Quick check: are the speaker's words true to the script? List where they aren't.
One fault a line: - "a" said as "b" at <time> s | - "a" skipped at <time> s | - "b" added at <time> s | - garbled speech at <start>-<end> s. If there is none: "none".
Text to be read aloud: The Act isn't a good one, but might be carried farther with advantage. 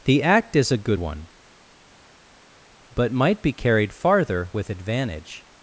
- "isn't" said as "is" at 0.6 s